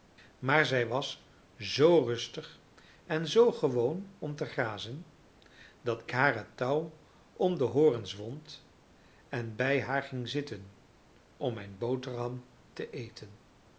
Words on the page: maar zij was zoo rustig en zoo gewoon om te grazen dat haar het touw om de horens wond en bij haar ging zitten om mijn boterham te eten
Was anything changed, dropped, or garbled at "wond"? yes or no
no